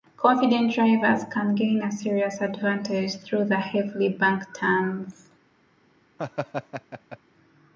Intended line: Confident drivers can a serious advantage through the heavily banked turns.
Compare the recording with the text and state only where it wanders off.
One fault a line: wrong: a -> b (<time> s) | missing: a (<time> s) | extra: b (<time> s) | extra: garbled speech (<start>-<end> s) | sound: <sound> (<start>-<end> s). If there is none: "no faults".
extra: gain (1.5 s)
sound: laugh (6.2-7.2 s)